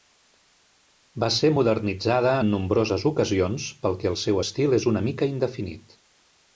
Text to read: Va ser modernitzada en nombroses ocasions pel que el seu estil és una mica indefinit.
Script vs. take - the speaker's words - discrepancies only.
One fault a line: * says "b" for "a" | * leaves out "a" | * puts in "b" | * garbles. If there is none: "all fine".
all fine